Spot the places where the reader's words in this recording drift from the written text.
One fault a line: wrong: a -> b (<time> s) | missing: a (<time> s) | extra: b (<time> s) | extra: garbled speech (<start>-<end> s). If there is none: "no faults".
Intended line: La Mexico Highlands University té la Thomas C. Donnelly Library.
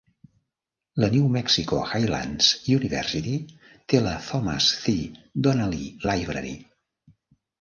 extra: New (1.1 s)